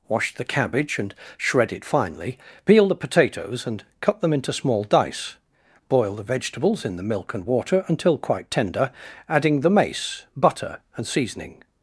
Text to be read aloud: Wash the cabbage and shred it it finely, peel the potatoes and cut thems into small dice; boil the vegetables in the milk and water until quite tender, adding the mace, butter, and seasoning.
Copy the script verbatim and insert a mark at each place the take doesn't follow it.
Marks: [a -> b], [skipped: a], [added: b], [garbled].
Wash the cabbage and shred it [skipped: it] finely, peel the potatoes and cut [thems -> them] into small dice; boil the vegetables in the milk and water until quite tender, adding the mace, butter, and seasoning.